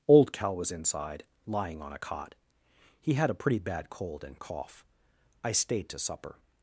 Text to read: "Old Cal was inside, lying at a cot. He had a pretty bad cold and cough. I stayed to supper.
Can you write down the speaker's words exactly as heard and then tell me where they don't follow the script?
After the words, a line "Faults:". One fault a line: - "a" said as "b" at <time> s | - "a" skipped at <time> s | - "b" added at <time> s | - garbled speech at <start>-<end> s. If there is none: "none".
"Old Cal was inside, lying on a cot. He had a pretty bad cold and cough. I stayed to supper.
Faults:
- "at" said as "on" at 1.8 s